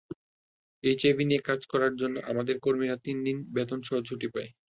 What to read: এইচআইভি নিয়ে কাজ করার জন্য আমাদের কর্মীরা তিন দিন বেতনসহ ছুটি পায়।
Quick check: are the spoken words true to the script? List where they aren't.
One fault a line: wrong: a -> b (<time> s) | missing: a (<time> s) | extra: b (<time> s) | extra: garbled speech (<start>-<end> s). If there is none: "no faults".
no faults